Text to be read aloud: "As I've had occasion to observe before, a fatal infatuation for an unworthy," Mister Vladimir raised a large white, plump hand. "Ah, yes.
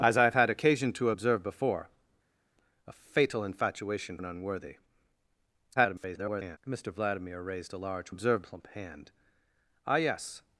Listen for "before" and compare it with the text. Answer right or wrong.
right